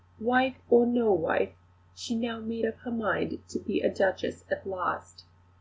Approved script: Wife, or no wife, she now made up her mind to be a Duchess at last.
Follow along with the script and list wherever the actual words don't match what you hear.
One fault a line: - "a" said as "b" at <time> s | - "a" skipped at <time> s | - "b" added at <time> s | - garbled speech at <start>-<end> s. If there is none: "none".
none